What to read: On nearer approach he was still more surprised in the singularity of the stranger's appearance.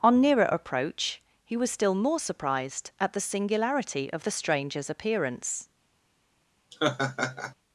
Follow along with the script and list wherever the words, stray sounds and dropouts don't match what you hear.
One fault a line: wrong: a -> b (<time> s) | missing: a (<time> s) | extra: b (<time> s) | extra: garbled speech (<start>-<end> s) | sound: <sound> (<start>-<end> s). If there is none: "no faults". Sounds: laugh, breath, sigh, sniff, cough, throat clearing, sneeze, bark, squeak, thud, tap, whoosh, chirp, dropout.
wrong: in -> at (3.0 s)
sound: laugh (6.7-7.5 s)